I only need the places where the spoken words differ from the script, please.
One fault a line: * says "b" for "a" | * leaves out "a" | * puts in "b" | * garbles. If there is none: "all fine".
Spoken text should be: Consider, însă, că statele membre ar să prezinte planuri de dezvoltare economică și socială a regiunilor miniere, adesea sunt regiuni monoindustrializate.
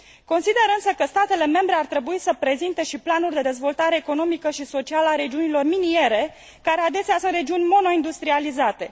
* puts in "trebui"
* puts in "și"
* puts in "care"